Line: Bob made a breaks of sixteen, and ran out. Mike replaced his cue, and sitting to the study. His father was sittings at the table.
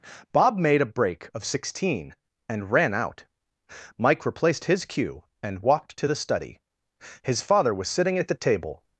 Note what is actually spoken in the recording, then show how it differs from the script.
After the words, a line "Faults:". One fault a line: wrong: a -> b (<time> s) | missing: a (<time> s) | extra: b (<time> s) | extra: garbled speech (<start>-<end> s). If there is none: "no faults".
Bob made a break of sixteen, and ran out. Mike replaced his cue, and walked to the study. His father was sitting at the table.
Faults:
wrong: breaks -> break (0.8 s)
wrong: sitting -> walked (5.6 s)
wrong: sittings -> sitting (7.9 s)